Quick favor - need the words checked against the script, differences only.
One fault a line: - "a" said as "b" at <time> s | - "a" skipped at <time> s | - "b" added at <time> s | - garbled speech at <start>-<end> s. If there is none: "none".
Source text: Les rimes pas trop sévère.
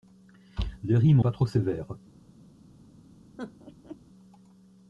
none